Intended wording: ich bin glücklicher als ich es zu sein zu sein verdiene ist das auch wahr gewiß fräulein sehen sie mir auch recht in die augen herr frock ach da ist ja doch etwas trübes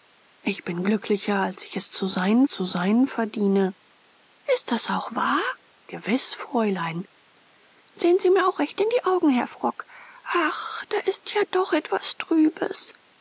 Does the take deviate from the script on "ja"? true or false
false